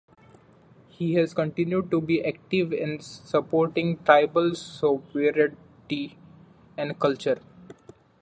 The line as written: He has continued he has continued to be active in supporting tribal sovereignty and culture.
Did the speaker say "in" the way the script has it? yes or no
yes